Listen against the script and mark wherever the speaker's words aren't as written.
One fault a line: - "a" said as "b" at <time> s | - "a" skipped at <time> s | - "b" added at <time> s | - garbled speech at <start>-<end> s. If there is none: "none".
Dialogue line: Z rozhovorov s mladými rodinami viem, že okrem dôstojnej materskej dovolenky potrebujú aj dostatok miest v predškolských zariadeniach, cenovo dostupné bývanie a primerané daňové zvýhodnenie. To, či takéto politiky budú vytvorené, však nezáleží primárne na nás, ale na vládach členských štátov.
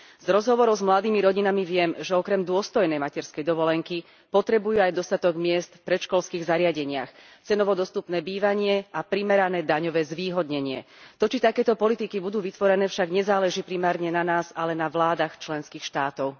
none